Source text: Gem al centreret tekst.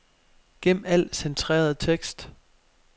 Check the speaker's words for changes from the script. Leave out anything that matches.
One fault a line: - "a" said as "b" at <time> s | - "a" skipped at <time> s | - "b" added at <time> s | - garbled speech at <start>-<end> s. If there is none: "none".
none